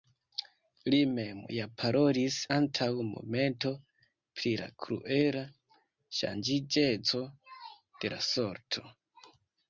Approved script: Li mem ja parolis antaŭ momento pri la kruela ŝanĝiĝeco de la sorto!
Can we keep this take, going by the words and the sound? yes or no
yes